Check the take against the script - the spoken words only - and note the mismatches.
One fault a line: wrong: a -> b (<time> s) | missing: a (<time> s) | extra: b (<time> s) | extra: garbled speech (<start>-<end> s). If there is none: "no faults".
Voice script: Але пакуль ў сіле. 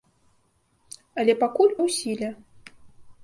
no faults